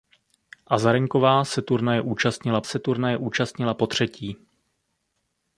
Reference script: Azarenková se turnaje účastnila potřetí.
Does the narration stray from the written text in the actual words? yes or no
yes